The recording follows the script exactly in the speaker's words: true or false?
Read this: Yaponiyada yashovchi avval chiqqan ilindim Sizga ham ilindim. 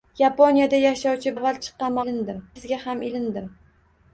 true